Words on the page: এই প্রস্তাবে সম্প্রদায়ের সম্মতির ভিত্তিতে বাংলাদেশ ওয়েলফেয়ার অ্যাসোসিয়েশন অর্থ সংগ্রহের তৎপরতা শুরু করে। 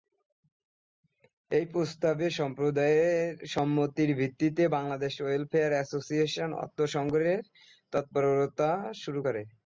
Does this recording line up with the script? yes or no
yes